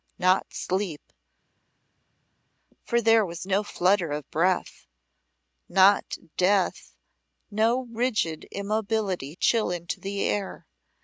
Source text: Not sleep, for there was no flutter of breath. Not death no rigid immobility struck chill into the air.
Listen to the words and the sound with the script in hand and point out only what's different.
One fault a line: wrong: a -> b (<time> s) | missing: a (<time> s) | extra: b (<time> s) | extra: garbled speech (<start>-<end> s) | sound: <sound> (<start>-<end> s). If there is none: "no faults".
missing: struck (9.3 s)